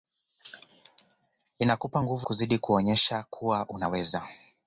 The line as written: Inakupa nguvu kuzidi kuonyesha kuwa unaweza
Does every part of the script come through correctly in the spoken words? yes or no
yes